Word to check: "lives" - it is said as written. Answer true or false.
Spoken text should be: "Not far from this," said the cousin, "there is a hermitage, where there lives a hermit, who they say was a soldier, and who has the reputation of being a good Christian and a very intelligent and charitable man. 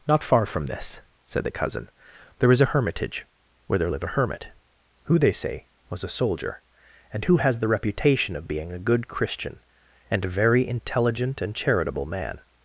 false